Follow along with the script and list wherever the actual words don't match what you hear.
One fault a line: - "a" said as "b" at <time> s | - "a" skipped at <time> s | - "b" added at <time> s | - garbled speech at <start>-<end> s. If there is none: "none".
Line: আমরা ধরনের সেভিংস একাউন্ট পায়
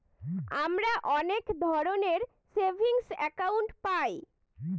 - "অনেক" added at 1.1 s